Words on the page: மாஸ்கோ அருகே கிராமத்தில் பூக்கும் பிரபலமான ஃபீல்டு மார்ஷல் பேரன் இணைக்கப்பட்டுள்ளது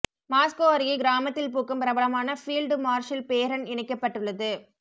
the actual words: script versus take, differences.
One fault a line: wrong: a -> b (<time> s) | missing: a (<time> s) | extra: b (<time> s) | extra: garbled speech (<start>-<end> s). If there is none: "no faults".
no faults